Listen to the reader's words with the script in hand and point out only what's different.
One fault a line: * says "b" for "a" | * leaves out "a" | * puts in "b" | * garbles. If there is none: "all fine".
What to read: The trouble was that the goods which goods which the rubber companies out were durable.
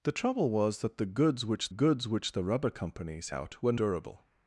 all fine